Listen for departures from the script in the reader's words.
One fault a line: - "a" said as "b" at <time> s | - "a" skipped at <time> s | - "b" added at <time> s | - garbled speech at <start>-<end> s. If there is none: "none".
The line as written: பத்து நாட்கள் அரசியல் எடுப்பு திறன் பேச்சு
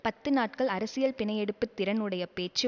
- "பிணை" added at 1.1 s
- "உடைய" added at 2.0 s